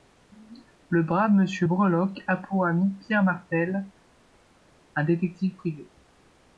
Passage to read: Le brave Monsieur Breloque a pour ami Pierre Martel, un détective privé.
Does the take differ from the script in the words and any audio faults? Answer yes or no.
no